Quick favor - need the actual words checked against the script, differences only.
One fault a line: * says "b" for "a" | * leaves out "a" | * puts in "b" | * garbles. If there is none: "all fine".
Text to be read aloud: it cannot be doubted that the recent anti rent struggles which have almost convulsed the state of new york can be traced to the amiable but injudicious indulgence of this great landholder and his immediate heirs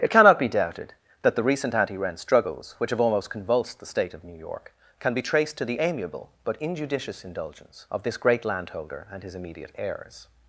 all fine